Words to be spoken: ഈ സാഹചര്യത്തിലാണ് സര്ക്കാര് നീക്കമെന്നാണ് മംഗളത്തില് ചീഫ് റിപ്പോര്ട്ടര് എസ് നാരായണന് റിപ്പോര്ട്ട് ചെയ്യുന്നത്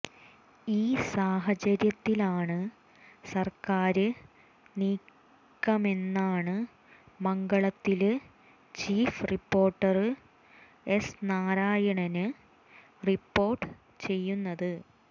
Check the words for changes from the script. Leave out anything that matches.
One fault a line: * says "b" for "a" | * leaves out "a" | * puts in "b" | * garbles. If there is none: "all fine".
all fine